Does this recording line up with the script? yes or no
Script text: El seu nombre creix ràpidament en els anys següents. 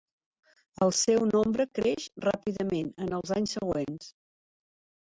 yes